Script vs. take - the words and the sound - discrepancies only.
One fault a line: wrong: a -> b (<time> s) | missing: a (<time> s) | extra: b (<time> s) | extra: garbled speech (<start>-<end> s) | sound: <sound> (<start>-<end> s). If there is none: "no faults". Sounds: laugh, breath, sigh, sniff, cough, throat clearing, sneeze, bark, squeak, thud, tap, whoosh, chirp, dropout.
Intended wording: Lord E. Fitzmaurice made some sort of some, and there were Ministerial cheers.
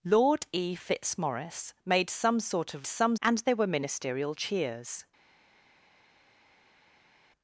no faults